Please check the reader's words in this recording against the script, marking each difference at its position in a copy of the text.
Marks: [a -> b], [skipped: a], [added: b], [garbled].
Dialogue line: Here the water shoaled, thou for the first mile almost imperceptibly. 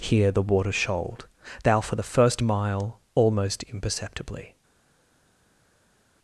Here the water shoaled, thou for the first mile almost imperceptibly.